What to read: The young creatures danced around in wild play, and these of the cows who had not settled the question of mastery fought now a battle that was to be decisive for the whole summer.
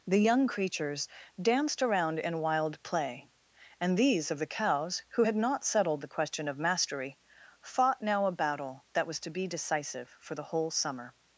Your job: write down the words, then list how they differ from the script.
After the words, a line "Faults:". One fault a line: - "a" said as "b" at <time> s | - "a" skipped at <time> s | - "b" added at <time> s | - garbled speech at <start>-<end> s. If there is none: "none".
The young creatures danced around in wild play, and these of the cows who had not settled the question of mastery fought now a battle that was to be decisive for the whole summer.
Faults:
none